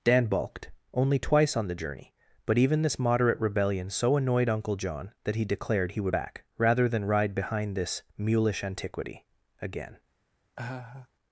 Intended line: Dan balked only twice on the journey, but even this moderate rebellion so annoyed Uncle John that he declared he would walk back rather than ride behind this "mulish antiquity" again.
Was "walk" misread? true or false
true